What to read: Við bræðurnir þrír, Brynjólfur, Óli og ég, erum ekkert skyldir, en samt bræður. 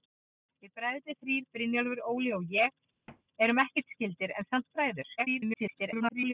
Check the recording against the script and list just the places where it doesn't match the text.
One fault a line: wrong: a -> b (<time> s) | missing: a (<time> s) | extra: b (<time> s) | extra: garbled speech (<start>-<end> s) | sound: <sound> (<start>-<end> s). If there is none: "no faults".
sound: thud (3.1-3.2 s)
extra: garbled speech (5.2-6.3 s)